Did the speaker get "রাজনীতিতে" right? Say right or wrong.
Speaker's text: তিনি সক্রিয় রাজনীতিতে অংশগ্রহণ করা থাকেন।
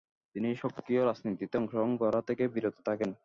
right